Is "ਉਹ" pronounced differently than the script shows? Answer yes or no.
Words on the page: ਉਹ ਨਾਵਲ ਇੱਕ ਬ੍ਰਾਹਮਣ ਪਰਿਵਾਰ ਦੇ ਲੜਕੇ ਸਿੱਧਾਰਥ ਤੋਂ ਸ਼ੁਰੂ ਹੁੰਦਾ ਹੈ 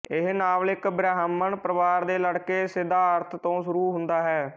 yes